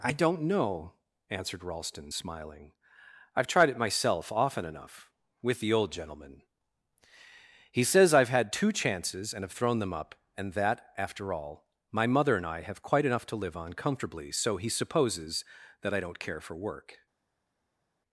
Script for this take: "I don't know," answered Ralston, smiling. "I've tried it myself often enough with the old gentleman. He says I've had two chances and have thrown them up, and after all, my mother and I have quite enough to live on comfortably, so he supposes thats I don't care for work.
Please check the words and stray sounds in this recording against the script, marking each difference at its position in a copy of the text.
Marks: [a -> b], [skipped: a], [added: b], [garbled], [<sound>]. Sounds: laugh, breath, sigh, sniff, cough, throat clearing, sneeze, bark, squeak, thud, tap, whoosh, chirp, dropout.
"I don't know," answered Ralston, smiling. "I've tried it myself often enough with the old gentleman. He says I've had two chances and have thrown them up, and [added: that] after all, my mother and I have quite enough to live on comfortably, so he supposes [thats -> that] I don't care for work.